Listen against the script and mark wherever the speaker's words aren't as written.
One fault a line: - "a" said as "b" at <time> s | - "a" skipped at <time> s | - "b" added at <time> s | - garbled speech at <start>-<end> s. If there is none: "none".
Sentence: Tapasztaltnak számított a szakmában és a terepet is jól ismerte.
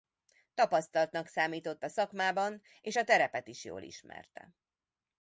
none